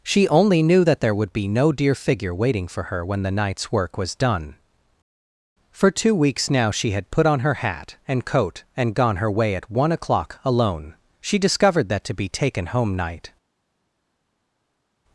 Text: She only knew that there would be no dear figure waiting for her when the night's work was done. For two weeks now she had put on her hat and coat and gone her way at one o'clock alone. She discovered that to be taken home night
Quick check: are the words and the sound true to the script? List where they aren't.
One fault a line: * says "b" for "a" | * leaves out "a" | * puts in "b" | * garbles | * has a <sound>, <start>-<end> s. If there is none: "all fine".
all fine